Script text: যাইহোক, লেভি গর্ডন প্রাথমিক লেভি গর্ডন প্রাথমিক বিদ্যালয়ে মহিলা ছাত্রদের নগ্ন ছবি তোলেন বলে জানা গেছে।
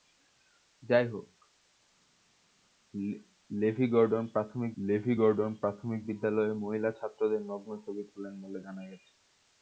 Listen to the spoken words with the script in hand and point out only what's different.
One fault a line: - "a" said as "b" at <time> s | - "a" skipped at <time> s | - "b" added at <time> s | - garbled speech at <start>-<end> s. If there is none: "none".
none